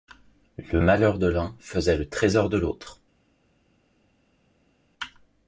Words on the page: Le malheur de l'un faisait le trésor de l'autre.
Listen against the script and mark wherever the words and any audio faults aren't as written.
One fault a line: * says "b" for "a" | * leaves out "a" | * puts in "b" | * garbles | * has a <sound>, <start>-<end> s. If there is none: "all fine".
all fine